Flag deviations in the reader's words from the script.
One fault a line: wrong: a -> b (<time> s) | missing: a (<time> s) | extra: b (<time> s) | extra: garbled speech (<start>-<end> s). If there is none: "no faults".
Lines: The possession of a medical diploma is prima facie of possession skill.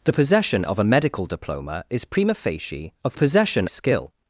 no faults